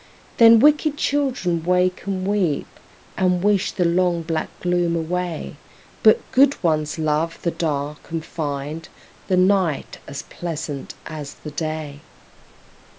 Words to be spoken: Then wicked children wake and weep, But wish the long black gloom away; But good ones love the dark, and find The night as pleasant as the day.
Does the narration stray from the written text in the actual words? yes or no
yes